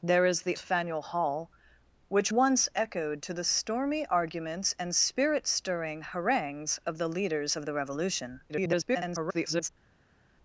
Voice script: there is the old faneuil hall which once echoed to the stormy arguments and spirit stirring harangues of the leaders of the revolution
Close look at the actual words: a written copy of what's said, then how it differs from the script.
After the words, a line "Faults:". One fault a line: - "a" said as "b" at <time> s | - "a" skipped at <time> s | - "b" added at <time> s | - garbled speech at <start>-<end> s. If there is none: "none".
there is the faneuil hall which once echoed to the stormy arguments and spirit stirring harangues of the leaders of the revolution [garbled]
Faults:
- "old" skipped at 0.6 s
- garbled speech at 8.5-9.7 s